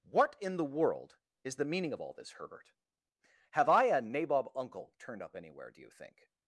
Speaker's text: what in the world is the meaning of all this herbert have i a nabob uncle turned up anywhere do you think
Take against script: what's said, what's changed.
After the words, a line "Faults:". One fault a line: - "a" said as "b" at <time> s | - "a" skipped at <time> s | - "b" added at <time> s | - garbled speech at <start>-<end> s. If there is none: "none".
what in the world is the meaning of all this herbert have i a nabob uncle turned up anywhere do you think
Faults:
none